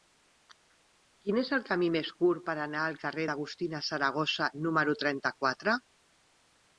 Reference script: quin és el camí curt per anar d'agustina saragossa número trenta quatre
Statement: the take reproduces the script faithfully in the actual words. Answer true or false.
false